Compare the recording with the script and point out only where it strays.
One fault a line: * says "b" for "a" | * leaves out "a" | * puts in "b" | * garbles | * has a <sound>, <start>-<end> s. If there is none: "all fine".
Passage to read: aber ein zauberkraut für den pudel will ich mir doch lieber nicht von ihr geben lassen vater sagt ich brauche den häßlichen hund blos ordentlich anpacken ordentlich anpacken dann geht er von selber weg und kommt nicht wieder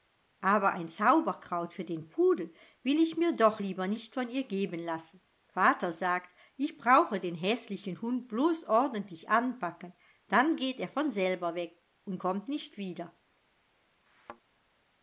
* leaves out "ordentlich anpacken"
* has a thud, 14.1-14.4 s